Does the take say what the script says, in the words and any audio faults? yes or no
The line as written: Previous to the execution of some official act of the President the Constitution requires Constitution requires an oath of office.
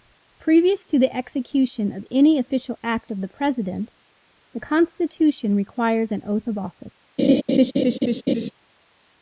no